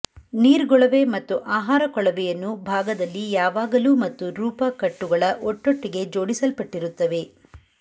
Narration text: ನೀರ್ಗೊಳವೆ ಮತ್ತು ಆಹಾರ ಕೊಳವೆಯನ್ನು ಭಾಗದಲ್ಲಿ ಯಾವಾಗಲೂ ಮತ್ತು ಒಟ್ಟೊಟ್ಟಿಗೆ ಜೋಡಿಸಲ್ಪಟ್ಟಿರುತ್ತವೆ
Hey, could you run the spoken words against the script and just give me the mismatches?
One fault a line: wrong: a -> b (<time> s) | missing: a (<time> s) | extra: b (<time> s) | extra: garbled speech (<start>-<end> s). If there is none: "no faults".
extra: ರೂಪ ಕಟ್ಟುಗಳ (4.4 s)